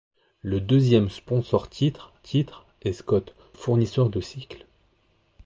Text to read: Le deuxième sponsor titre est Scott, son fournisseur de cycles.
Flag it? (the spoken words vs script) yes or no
yes